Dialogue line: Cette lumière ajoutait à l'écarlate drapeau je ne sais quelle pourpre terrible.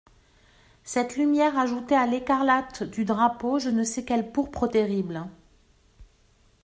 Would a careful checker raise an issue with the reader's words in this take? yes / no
yes